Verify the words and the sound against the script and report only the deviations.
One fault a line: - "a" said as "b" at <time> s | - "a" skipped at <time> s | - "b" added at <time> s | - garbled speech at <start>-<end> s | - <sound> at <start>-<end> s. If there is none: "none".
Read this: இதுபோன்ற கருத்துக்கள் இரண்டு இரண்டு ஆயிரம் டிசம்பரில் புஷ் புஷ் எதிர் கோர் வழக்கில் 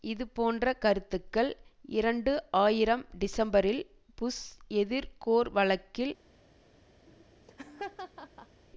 - "இரண்டு" skipped at 2.3 s
- "புஷ்" skipped at 4.4 s
- laugh at 7.1-8.6 s